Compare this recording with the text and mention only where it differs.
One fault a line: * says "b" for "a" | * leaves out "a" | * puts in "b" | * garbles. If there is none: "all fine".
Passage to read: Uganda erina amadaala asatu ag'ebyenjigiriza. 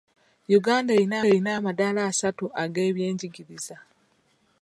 * puts in "erina"